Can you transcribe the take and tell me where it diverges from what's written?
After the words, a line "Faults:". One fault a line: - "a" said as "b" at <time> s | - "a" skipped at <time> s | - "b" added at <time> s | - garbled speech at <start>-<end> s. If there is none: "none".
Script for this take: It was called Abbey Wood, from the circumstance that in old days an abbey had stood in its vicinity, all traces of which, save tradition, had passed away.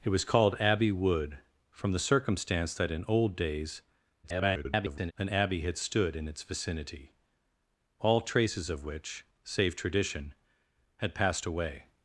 It was called Abbey Wood, from the circumstance that in old days [garbled] an abbey had stood in its vicinity, all traces of which, save tradition, had passed away.
Faults:
- garbled speech at 4.2-5.1 s